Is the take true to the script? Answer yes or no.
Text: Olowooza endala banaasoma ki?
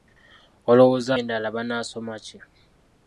yes